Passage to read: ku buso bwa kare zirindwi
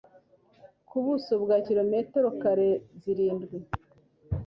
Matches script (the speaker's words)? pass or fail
fail